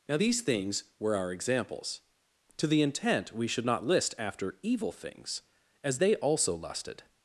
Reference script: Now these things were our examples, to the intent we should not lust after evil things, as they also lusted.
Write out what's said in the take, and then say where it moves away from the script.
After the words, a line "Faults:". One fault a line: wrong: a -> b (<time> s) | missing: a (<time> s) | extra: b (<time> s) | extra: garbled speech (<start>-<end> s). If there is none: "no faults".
Now these things were our examples, to the intent we should not list after evil things, as they also lusted.
Faults:
wrong: lust -> list (3.8 s)